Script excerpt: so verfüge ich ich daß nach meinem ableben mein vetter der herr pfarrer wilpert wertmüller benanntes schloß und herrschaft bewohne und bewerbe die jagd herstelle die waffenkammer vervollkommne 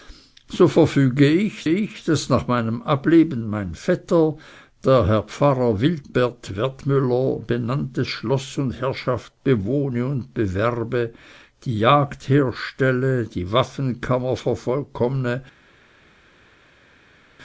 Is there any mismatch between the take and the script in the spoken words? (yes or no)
no